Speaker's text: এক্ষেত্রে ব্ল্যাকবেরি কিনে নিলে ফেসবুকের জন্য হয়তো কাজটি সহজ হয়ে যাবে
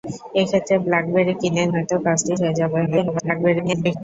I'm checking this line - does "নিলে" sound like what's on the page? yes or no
no